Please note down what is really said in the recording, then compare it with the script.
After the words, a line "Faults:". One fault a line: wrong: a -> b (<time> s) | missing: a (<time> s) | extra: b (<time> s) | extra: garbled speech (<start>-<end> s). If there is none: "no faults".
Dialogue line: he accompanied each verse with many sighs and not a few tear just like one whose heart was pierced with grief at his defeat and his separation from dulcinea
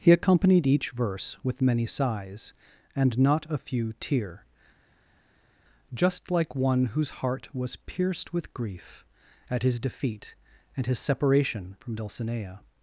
he accompanied each verse with many sighs and not a few tear just like one whose heart was pierced with grief at his defeat and his separation from dulcinea
Faults:
no faults